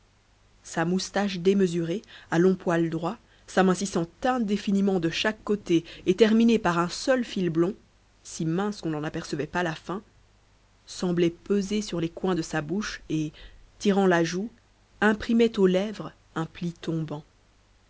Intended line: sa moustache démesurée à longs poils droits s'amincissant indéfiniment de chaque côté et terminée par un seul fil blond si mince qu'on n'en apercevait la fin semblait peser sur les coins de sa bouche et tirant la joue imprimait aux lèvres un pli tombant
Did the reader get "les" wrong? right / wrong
right